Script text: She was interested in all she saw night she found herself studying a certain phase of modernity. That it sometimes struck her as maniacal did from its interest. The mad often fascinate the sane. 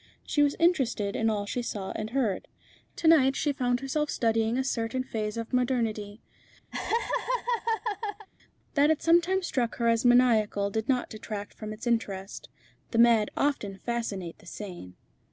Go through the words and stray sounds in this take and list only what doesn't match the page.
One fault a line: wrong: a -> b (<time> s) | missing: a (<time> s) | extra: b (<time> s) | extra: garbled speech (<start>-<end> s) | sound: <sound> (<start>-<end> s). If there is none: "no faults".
extra: and heard To (1.9 s)
sound: laugh (6.7-8.3 s)
extra: not detract (10.9 s)